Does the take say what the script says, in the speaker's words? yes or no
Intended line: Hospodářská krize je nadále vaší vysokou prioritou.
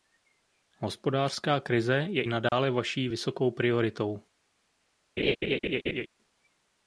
yes